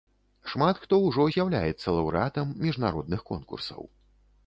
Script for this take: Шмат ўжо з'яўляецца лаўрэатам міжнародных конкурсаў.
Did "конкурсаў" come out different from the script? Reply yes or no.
no